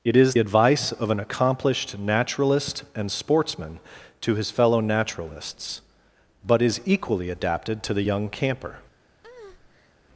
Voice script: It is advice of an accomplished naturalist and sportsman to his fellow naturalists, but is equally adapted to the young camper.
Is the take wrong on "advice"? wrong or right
right